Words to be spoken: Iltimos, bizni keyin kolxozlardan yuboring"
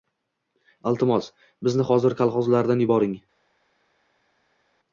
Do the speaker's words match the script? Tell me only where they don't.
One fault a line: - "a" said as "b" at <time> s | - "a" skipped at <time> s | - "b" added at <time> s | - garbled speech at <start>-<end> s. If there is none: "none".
- "keyin" said as "hozir" at 1.9 s